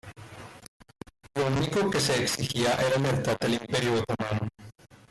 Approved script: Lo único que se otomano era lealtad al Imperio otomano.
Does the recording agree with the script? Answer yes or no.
no